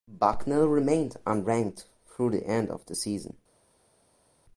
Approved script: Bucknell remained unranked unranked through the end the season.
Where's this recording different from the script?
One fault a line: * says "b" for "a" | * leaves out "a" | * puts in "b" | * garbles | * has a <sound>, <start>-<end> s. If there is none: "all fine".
* leaves out "unranked"
* puts in "of"